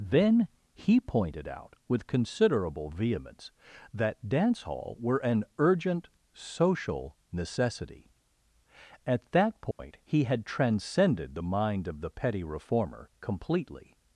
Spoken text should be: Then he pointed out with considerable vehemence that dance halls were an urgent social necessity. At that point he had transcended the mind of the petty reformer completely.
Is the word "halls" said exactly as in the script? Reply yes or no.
no